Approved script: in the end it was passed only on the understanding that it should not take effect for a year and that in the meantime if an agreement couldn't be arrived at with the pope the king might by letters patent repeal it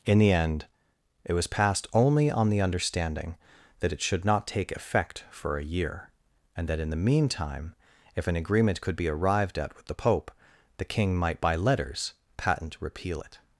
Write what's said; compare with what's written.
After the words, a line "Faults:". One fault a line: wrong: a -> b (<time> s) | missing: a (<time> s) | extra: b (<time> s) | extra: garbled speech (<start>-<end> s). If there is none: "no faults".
in the end it was passed only on the understanding that it should not take effect for a year and that in the meantime if an agreement could be arrived at with the pope the king might by letters patent repeal it
Faults:
wrong: couldn't -> could (8.8 s)